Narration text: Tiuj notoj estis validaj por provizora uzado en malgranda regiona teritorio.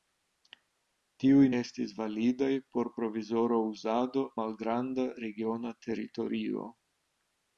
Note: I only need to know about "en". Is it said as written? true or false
false